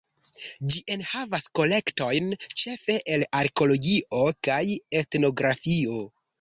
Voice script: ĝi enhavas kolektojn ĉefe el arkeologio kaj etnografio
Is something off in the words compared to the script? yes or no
no